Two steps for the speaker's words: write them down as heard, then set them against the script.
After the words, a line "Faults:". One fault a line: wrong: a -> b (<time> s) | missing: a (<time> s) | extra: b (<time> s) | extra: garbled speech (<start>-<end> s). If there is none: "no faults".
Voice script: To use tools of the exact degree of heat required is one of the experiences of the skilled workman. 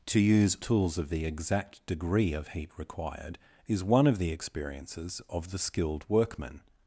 To use tools of the exact degree of heat required is one of the experiences of the skilled workman.
Faults:
no faults